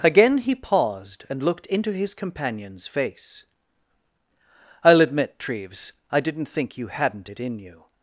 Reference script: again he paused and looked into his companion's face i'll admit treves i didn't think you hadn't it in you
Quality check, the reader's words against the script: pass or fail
pass